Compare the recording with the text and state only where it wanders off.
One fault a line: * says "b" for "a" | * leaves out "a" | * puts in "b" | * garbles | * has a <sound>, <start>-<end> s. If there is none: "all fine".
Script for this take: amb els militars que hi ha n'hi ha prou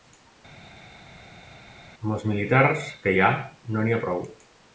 * puts in "no"